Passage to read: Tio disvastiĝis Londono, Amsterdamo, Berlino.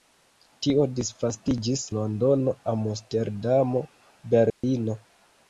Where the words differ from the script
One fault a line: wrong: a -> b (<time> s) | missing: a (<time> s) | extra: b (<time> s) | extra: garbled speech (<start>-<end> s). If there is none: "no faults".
no faults